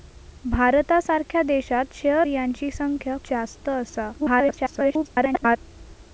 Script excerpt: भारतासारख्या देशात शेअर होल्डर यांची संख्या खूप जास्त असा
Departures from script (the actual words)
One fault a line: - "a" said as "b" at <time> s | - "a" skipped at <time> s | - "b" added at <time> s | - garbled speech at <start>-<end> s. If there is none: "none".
- "होल्डर" skipped at 2.3 s
- "खूप" skipped at 3.2 s
- garbled speech at 4.2-5.6 s